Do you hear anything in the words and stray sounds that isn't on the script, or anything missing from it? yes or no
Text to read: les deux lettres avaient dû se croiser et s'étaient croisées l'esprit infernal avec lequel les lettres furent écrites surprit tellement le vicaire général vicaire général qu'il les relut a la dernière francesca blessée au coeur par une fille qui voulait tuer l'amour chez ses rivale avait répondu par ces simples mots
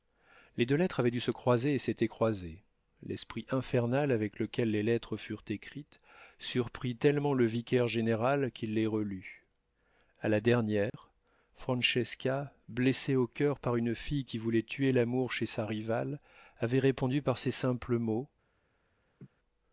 yes